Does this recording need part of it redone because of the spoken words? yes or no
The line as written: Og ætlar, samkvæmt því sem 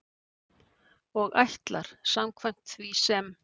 no